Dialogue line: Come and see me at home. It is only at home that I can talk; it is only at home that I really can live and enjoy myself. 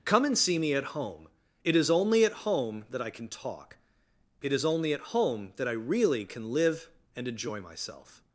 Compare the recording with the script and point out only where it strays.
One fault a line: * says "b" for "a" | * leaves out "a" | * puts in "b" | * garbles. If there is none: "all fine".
all fine